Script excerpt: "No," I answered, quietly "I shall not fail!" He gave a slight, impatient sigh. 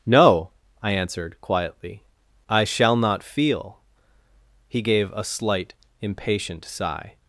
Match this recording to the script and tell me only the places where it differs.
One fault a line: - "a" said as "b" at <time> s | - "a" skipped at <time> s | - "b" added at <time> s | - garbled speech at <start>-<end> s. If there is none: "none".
- "fail" said as "feel" at 3.2 s